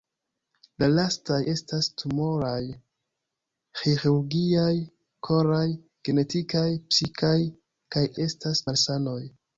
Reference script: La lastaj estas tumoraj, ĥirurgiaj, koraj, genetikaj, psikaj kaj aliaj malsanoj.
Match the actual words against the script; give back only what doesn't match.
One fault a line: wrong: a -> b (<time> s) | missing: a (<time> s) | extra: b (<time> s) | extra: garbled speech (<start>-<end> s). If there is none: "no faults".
wrong: aliaj -> estas (8.2 s)